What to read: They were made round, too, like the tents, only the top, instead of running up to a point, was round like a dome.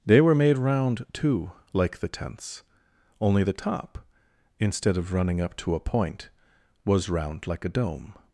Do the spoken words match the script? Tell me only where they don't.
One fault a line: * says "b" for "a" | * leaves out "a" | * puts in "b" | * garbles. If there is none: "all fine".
all fine